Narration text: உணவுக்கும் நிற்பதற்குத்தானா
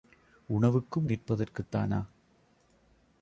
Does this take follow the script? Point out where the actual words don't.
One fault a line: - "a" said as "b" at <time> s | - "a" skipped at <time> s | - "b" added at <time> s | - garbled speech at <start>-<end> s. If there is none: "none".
none